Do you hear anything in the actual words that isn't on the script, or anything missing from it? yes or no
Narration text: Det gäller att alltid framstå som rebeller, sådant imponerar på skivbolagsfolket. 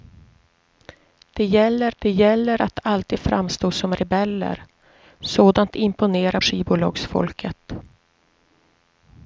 yes